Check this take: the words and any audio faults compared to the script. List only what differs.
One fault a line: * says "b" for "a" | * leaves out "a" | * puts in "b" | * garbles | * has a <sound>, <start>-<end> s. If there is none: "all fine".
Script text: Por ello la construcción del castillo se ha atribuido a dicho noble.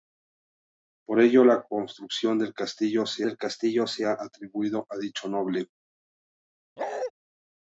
* puts in "del castillo se"
* has a bark, 6.8-7.1 s